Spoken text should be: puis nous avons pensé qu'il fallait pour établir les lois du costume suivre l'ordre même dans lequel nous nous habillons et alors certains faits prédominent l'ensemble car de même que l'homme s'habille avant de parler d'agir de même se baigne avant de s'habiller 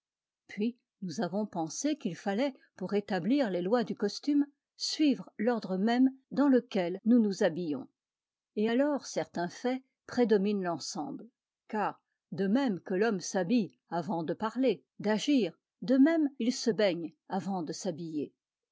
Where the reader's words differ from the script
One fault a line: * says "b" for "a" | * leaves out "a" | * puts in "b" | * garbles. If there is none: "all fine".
* puts in "il"